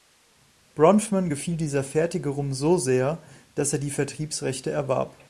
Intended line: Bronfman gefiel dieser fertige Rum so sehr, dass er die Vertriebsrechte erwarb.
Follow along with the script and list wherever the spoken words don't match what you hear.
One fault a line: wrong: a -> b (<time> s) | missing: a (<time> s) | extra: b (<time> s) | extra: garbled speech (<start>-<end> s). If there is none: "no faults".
no faults